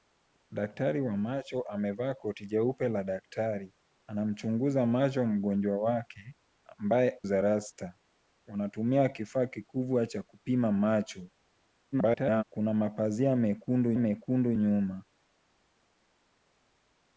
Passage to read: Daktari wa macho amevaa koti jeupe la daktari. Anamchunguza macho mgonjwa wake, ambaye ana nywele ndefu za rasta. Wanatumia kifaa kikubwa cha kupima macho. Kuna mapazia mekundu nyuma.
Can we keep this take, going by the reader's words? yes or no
no